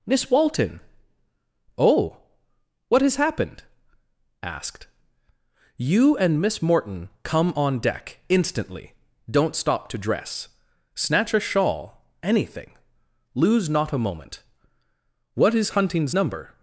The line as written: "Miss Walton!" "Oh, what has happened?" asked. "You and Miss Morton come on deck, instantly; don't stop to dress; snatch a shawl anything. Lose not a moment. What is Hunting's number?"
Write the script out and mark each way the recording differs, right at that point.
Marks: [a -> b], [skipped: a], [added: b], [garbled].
"Miss Walton!" "Oh, what has happened?" asked. "You and Miss Morton come on deck, instantly; don't stop to dress; snatch a shawl anything. Lose not a moment. What is Hunting's number?"